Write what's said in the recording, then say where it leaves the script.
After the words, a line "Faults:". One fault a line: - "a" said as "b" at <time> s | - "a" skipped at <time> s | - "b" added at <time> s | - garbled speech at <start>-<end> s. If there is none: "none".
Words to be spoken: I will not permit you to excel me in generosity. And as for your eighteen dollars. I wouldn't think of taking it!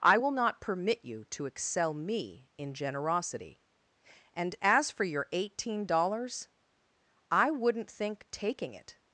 I will not permit you to excel me in generosity. And as for your eighteen dollars. I wouldn't think taking it!
Faults:
- "of" skipped at 8.3 s